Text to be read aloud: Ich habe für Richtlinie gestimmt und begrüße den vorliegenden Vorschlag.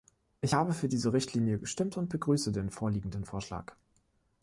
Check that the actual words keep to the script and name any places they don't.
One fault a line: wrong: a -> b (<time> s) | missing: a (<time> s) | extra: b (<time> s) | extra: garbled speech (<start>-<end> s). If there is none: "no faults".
extra: diese (0.9 s)